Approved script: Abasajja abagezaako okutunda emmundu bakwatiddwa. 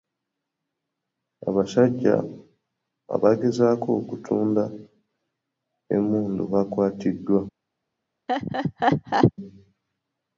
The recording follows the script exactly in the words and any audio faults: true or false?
false